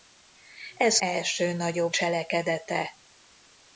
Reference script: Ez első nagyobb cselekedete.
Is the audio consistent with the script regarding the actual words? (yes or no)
yes